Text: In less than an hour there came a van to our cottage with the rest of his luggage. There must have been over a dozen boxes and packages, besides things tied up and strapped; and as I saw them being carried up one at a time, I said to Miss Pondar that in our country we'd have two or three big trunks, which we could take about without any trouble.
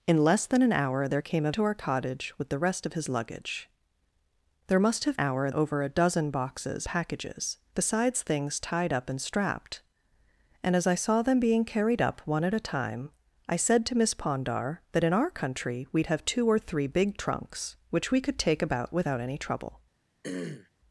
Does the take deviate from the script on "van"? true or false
true